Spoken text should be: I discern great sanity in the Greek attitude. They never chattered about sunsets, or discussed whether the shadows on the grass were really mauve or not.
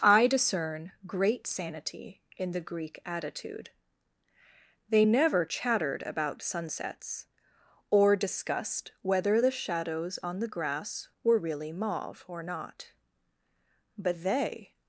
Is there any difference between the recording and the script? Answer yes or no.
yes